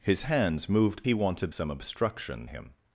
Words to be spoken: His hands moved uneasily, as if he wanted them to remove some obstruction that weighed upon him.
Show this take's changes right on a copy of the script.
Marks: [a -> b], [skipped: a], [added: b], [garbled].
His hands moved [skipped: uneasily, as if] he wanted [skipped: them to remove] some obstruction [skipped: that weighed upon] him.